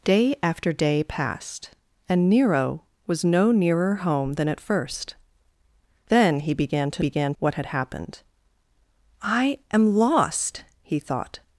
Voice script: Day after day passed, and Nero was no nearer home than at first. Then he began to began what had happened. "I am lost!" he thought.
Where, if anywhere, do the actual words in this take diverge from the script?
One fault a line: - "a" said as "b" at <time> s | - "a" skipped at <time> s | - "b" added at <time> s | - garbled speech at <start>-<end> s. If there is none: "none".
none